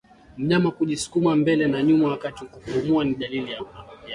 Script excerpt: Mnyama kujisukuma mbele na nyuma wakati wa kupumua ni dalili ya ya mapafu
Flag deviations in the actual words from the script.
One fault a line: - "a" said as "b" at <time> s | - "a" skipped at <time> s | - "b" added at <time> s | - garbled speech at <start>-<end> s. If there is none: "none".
none